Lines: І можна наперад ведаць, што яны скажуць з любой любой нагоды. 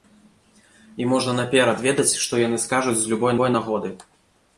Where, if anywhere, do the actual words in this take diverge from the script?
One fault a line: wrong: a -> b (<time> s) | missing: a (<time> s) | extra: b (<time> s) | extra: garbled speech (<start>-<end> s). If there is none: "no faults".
no faults